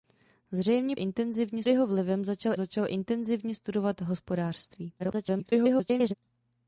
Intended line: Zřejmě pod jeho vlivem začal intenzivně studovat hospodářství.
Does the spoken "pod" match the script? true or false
false